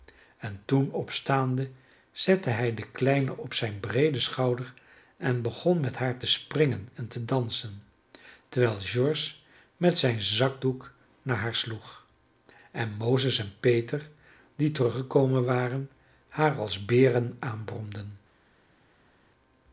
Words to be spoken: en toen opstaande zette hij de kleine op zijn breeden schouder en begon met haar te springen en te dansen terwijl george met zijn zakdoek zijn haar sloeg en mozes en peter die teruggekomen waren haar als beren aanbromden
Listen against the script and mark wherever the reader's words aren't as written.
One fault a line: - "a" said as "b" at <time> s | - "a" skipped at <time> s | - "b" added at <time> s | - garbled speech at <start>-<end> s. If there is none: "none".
- "zijn" said as "naar" at 11.2 s